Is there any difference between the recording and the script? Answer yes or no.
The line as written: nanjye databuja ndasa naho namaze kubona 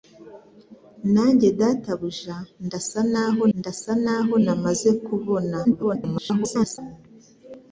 yes